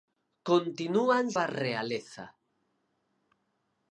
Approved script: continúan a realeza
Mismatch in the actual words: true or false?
false